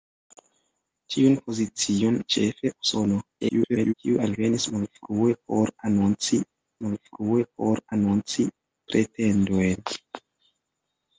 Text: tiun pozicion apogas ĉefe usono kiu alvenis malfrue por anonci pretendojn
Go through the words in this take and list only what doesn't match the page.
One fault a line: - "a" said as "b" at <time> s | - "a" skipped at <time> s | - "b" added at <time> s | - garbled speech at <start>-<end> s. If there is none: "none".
- "apogas" skipped at 2.2 s
- garbled speech at 3.4-3.9 s
- "malfrue por anonci" added at 6.9 s